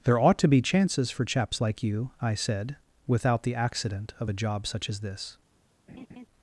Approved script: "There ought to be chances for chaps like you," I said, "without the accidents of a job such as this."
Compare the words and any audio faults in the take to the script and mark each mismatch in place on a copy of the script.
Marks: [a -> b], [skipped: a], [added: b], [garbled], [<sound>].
"There ought to be chances for chaps like you," I said, "without the [accidents -> accident] of a job such as this." [laugh]